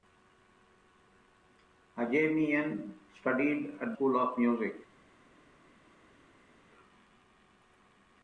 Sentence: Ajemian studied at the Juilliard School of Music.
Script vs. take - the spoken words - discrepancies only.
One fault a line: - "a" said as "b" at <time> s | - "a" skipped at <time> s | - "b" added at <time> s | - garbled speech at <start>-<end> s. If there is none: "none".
- "the Juilliard" skipped at 4.0 s